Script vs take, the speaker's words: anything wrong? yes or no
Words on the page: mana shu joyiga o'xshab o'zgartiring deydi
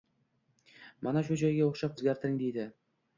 no